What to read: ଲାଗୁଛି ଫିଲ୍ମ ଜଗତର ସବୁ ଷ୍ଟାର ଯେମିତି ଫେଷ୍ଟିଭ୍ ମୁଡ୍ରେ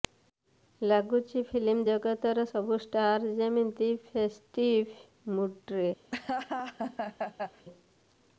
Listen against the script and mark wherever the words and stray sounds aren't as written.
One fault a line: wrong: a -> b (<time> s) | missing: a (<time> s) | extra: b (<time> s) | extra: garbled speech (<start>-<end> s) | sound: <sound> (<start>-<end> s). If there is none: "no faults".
sound: laugh (6.1-7.7 s)